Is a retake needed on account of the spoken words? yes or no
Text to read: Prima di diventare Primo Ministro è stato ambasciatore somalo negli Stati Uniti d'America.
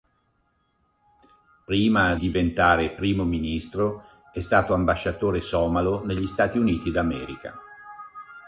yes